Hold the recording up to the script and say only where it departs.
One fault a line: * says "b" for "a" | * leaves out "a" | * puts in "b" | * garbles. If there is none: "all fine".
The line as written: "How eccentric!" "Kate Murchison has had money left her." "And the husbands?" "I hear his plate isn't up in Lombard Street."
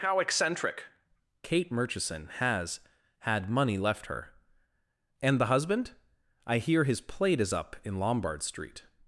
* says "husband" for "husbands"
* says "is" for "isn't"